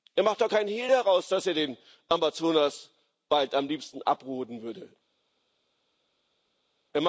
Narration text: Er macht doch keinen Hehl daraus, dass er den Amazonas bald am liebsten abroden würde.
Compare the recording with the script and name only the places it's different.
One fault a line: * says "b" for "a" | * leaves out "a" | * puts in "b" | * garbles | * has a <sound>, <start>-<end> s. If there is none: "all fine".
all fine